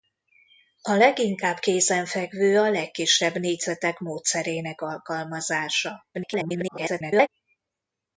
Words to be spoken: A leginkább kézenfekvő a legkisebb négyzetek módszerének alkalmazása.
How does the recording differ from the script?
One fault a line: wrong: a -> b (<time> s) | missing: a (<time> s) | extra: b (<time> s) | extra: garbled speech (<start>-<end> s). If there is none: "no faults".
extra: garbled speech (6.1-7.3 s)